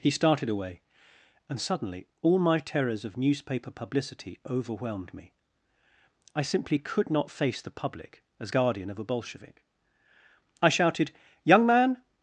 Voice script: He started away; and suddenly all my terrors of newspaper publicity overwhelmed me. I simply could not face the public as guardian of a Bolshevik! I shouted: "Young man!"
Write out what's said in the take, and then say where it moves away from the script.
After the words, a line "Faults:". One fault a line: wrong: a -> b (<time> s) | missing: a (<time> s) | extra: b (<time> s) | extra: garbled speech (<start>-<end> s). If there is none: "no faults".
He started away; and suddenly all my terrors of newspaper publicity overwhelmed me. I simply could not face the public as guardian of a Bolshevik! I shouted: "Young man!"
Faults:
no faults